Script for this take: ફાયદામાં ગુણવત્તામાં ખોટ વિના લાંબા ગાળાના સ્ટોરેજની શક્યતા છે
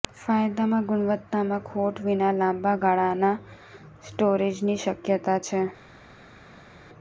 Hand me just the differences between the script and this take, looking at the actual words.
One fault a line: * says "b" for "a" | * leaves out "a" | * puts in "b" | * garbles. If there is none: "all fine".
all fine